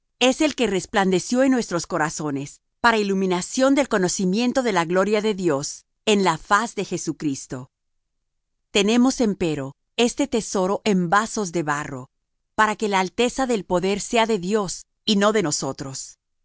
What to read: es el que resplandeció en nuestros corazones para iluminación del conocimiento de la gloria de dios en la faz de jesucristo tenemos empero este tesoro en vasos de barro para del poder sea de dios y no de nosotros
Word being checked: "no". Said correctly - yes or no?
yes